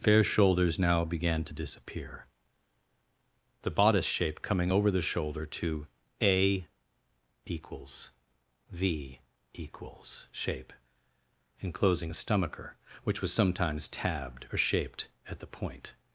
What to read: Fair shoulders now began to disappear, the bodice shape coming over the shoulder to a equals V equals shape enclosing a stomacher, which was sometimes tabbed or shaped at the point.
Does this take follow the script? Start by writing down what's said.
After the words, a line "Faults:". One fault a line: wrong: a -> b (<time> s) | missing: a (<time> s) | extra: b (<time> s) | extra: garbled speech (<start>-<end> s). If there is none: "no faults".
Fair shoulders now began to disappear, the bodice shape coming over the shoulder to a equals V equals shape enclosing a stomacher, which was sometimes tabbed or shaped at the point.
Faults:
no faults